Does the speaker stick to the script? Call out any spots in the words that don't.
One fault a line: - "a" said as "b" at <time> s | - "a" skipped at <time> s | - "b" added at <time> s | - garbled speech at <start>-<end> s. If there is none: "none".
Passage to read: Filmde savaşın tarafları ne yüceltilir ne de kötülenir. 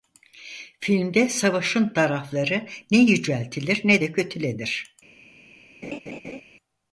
none